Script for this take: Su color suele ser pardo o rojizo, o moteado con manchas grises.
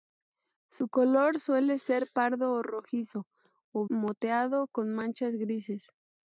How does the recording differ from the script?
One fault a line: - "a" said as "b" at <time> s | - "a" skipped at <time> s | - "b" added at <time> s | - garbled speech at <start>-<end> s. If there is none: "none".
none